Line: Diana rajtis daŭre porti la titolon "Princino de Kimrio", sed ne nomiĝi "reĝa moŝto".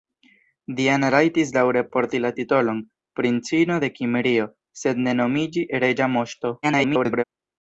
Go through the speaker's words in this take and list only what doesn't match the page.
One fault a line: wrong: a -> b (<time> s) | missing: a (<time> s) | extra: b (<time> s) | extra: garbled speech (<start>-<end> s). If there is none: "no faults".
extra: garbled speech (6.6-7.2 s)